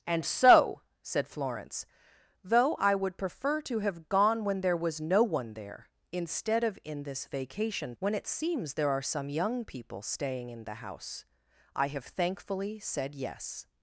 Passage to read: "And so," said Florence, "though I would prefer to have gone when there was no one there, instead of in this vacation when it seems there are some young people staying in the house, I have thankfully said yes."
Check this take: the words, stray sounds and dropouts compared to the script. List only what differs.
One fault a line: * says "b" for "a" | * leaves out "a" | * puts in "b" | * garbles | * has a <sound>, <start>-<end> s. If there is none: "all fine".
all fine